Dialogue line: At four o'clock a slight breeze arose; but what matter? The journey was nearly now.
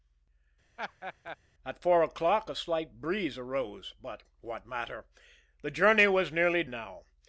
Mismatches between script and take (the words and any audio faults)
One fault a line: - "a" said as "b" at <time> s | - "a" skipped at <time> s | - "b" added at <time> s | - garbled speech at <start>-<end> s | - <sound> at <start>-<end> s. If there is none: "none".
- laugh at 0.8-1.4 s